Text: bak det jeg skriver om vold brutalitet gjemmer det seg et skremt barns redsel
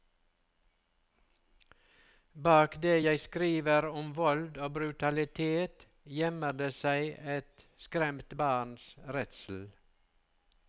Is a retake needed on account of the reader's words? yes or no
yes